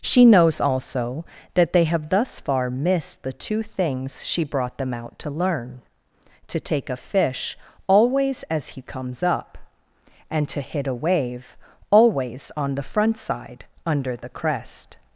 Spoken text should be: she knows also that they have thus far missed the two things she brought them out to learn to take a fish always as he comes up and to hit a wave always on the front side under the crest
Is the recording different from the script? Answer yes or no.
no